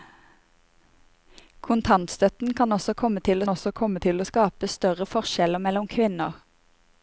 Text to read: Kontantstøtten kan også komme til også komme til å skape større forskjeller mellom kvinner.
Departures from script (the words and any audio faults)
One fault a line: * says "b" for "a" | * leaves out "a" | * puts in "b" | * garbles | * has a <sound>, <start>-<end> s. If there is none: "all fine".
all fine